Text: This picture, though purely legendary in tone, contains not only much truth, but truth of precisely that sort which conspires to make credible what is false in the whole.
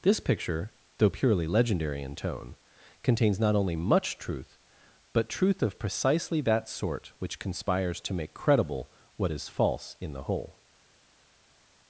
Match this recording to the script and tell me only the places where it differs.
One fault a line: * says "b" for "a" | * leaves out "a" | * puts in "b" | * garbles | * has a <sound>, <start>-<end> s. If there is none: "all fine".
all fine